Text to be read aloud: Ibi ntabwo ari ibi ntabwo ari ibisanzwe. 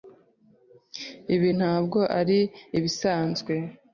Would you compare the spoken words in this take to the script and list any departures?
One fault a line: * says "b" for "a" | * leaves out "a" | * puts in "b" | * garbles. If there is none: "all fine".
* leaves out "ibi ntabwo ari"